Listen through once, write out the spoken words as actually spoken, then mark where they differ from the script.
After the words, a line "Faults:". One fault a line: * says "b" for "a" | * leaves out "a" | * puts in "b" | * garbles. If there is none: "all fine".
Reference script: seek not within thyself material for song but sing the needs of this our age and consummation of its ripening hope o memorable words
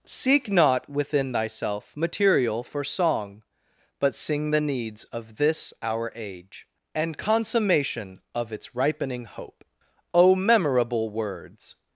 seek not within thyself material for song but sing the needs of this our age and consummation of its ripening hope o memorable words
Faults:
all fine